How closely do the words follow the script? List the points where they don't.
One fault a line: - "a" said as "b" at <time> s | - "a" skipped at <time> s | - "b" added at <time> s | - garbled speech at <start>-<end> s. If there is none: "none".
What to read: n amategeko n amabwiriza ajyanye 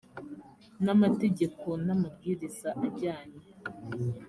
none